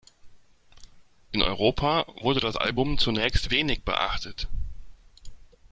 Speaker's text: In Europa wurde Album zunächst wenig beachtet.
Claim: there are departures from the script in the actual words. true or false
true